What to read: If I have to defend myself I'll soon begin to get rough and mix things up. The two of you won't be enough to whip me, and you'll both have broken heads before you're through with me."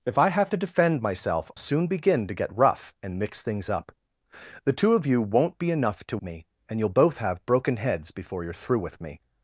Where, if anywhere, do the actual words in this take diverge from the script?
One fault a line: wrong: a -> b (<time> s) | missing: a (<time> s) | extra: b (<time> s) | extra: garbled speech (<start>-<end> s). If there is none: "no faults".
missing: I'll (1.5 s)
missing: whip (6.2 s)